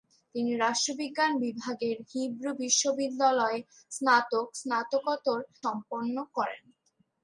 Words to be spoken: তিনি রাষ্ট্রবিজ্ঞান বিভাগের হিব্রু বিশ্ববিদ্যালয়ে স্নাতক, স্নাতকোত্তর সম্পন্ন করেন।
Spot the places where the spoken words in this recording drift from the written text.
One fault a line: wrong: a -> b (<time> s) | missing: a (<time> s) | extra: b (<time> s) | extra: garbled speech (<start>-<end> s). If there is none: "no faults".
no faults